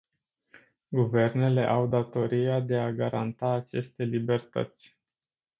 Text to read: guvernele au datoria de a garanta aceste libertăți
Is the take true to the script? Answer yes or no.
yes